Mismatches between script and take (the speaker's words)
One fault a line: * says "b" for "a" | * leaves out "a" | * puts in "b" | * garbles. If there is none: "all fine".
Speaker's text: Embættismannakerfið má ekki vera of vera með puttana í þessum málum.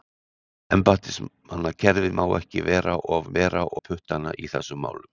all fine